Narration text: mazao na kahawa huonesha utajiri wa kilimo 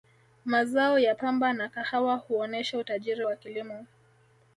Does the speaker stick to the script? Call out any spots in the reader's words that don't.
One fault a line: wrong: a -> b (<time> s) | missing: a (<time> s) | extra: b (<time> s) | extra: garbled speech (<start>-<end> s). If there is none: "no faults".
extra: ya pamba (1.0 s)